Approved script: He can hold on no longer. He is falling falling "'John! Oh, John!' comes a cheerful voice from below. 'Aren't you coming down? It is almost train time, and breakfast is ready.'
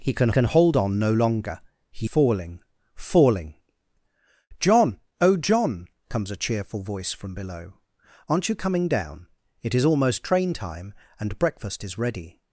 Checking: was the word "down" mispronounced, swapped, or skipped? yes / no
no